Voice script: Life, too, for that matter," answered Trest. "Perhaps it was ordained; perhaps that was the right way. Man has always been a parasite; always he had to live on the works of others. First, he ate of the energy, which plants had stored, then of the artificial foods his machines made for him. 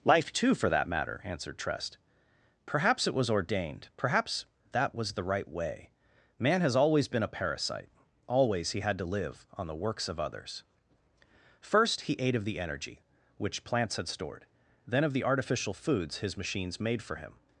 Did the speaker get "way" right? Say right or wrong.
right